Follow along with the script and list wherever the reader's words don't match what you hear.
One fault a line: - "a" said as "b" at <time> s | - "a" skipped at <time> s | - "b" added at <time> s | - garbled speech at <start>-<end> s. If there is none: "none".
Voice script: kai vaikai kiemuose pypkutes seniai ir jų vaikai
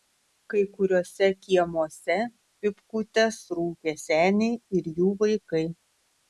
- "vaikai" said as "kuriuose" at 0.8 s
- "rūkė" added at 3.6 s